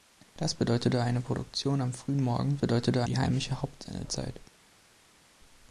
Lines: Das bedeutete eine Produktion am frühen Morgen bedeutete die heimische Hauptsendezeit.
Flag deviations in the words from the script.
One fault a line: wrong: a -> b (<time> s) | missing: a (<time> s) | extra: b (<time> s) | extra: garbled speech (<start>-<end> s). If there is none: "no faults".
no faults